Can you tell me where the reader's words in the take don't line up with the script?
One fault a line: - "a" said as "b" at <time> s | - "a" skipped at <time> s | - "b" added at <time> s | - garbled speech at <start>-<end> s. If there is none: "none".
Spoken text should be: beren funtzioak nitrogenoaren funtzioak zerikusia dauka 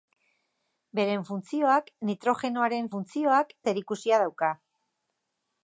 none